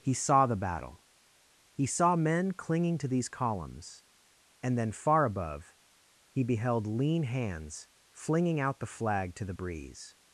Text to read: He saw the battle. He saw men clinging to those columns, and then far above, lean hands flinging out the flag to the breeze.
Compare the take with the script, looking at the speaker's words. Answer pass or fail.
fail